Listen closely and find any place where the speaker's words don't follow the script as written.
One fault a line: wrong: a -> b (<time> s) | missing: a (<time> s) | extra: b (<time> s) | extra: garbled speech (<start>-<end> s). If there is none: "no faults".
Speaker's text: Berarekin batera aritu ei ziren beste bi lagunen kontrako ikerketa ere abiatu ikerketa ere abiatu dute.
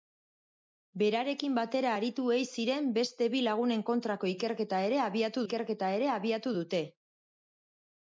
no faults